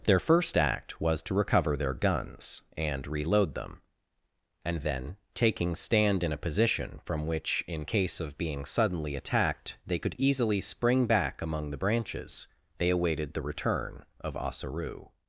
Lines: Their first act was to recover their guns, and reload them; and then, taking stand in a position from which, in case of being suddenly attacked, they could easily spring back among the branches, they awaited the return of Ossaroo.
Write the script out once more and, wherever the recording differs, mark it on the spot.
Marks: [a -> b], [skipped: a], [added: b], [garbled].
Their first act was to recover their guns, and reload them; and then, taking stand in a position from which, in case of being suddenly attacked, they could easily spring back among the branches, they awaited the return of Ossaroo.